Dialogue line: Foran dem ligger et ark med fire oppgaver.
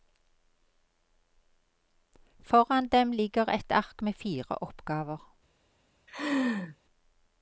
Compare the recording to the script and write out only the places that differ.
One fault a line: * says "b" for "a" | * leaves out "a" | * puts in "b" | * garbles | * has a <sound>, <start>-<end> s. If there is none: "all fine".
* has a laugh, 6.1-6.8 s